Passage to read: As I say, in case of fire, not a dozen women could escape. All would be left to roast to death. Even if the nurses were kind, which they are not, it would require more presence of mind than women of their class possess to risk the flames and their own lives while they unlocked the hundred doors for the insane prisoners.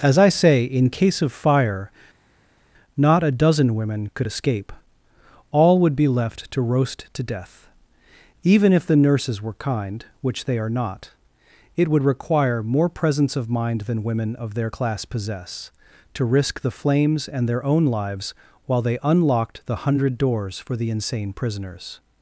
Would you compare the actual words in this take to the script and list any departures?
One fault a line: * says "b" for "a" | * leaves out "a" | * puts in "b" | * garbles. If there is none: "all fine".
all fine